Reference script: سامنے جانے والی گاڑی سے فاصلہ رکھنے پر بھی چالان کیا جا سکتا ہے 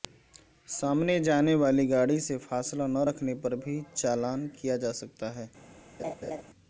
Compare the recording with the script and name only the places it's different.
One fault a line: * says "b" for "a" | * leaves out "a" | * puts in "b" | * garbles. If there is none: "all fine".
* puts in "نہ"